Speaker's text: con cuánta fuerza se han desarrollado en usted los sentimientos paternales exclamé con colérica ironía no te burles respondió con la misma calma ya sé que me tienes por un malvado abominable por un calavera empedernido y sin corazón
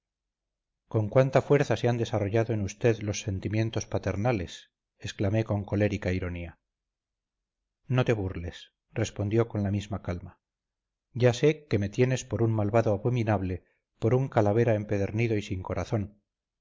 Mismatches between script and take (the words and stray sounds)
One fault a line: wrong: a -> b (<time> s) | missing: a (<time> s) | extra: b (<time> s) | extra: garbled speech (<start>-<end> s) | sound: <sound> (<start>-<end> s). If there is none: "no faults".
no faults